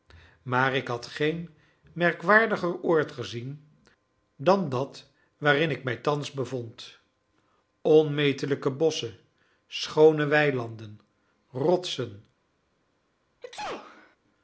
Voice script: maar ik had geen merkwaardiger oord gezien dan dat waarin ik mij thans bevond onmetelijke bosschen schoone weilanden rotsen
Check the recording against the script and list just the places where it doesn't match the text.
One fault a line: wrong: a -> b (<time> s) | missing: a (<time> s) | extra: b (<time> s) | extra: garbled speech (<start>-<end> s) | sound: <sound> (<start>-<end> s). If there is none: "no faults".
sound: sneeze (13.4-14.2 s)